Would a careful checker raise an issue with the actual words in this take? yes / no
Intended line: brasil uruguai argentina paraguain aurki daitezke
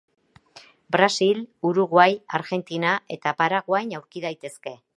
yes